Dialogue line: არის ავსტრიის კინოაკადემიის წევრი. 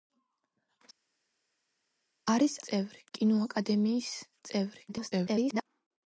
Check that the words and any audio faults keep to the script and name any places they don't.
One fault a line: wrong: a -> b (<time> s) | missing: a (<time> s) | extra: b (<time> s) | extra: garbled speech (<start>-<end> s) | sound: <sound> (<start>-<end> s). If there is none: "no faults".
wrong: ავსტრიის -> წევრი (2.7 s)
extra: garbled speech (4.9-5.6 s)